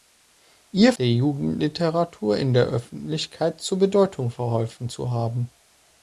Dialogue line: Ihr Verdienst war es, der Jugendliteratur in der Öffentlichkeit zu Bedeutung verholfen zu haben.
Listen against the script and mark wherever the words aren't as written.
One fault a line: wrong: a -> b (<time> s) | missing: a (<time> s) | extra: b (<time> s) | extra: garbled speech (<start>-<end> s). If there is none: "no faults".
missing: Verdienst war es (0.9 s)